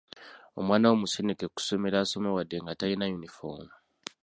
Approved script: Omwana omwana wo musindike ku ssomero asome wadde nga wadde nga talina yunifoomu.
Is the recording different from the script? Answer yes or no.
yes